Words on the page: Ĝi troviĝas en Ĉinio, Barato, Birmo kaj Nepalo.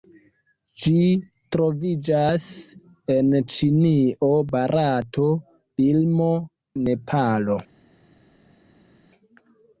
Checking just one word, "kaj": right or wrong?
wrong